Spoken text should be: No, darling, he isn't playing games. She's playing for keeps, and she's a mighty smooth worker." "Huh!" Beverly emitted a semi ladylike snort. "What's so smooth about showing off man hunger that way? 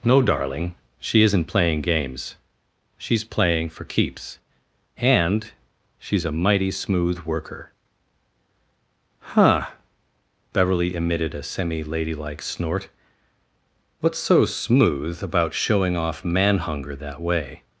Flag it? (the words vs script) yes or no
yes